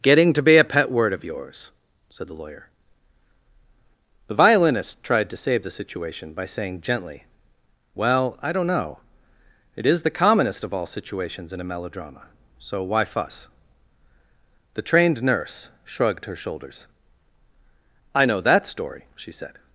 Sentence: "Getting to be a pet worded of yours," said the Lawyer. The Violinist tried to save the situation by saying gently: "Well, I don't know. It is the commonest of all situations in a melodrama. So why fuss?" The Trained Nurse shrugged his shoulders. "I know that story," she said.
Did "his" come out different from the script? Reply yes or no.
yes